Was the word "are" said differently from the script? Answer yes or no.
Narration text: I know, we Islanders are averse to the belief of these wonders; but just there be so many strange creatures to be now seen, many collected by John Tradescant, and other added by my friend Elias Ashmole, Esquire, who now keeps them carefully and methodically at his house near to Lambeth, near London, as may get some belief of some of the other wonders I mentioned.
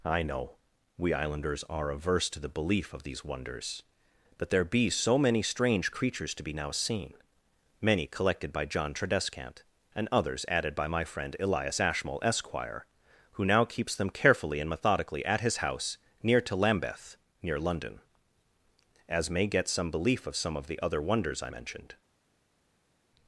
no